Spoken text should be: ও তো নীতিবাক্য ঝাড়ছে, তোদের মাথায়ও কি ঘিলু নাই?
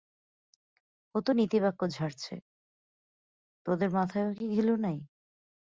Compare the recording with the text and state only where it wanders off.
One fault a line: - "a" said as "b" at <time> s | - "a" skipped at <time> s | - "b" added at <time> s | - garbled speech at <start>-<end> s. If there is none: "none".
none